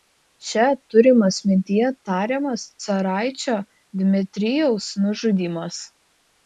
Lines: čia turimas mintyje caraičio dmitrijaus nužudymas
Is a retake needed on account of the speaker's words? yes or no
yes